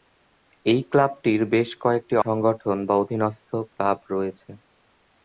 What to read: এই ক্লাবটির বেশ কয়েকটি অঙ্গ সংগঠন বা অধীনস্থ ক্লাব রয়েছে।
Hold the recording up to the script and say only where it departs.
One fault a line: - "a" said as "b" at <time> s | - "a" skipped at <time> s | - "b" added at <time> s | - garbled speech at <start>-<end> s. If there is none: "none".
- "অঙ্গ" skipped at 2.1 s